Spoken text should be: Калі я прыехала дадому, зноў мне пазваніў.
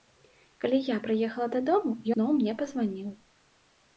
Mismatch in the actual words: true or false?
false